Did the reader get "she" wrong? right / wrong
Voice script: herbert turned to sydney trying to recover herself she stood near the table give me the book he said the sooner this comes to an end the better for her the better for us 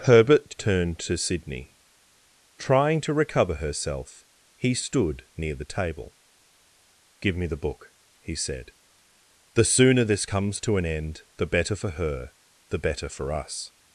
wrong